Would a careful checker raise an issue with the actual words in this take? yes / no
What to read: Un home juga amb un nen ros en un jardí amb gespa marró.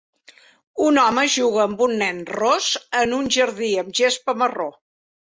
no